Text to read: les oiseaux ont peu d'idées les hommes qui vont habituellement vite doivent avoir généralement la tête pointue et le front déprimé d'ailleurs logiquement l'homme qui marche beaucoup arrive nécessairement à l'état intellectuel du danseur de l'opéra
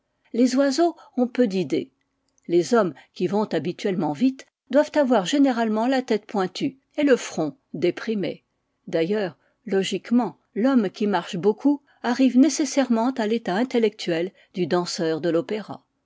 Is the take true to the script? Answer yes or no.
yes